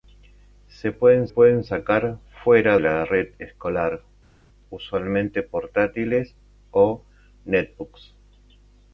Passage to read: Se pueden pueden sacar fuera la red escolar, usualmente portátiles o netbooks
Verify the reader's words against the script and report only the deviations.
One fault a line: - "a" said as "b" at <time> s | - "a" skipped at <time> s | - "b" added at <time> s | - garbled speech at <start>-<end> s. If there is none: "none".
none